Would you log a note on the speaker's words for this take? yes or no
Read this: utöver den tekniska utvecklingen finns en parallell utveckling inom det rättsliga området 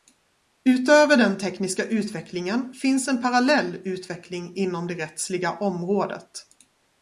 no